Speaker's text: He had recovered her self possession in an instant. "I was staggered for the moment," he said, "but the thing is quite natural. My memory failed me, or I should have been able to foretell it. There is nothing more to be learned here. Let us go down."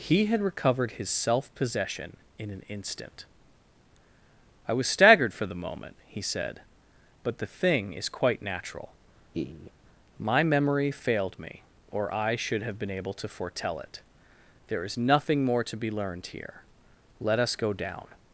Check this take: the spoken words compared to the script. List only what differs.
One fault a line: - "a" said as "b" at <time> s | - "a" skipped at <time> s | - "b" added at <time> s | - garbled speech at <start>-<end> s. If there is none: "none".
- "her" said as "his" at 1.0 s